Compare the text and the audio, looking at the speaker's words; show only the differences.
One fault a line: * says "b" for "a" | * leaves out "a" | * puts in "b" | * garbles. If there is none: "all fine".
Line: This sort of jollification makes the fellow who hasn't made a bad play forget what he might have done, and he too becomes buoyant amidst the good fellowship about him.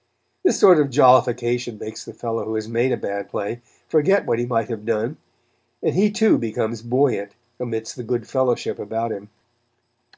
* says "has" for "hasn't"